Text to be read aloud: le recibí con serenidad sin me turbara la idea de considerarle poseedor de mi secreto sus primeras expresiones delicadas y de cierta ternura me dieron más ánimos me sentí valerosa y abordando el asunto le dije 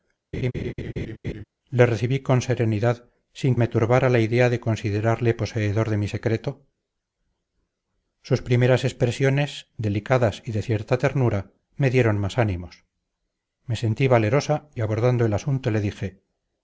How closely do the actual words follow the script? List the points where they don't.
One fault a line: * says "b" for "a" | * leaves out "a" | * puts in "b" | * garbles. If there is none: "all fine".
all fine